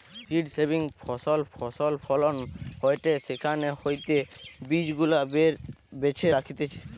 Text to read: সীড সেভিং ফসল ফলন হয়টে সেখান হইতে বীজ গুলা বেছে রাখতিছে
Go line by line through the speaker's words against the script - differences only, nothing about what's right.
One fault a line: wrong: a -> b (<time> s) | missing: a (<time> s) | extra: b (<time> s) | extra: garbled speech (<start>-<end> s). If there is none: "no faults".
extra: ফসল (1.5 s)